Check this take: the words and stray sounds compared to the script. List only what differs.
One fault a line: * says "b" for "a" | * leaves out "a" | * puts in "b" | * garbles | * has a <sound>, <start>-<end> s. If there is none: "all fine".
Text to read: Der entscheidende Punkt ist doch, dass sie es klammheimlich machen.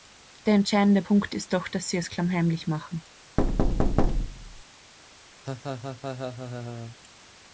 * has a thud, 3.4-4.6 s
* has a laugh, 5.4-7.0 s